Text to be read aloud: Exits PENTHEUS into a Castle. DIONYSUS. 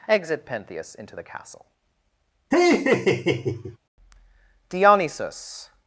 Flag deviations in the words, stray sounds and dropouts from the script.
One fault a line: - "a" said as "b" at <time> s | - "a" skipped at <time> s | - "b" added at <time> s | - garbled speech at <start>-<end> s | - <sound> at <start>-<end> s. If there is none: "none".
- "Exits" said as "Exit" at 0.1 s
- "a" said as "the" at 1.1 s
- laugh at 2.5-3.8 s